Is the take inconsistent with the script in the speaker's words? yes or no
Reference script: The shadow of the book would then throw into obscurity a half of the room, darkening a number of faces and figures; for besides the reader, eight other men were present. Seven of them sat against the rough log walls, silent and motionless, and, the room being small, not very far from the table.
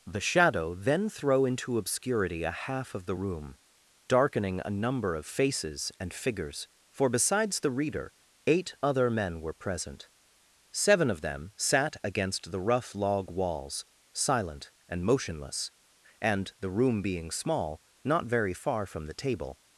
yes